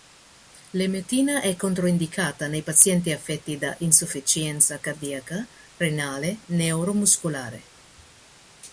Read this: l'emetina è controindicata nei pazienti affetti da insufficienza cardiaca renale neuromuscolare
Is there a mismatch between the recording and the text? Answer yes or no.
no